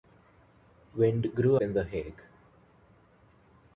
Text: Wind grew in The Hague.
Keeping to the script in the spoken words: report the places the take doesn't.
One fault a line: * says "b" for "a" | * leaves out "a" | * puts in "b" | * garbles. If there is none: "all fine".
all fine